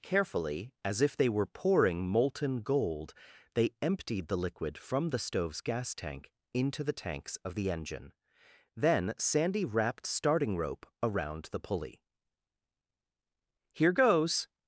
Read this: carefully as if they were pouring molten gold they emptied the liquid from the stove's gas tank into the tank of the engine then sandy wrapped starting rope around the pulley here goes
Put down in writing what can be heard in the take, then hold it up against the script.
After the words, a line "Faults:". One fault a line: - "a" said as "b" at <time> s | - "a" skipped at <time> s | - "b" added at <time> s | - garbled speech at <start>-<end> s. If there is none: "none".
carefully as if they were pouring molten gold they emptied the liquid from the stove's gas tank into the tanks of the engine then sandy wrapped starting rope around the pulley here goes
Faults:
- "tank" said as "tanks" at 6.9 s